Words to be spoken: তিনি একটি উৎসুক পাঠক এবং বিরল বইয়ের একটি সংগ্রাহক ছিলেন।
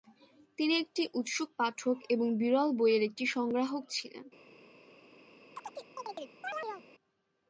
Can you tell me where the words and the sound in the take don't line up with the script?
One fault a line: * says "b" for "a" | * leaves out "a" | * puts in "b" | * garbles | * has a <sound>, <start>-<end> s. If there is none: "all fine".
* has a chirp, 5.5-6.9 s